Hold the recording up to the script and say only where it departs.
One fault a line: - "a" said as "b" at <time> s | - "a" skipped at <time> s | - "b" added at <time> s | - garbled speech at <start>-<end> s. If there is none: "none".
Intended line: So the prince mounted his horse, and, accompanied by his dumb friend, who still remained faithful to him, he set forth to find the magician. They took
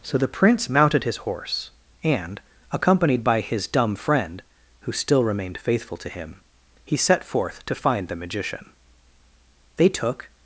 none